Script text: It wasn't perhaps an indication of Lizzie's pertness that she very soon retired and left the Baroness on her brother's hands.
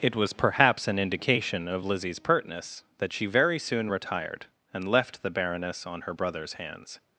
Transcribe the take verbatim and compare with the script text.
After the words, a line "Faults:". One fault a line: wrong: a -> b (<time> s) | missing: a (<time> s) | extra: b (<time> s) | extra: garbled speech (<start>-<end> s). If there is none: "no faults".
It was perhaps an indication of Lizzie's pertness that she very soon retired and left the Baroness on her brother's hands.
Faults:
wrong: wasn't -> was (0.1 s)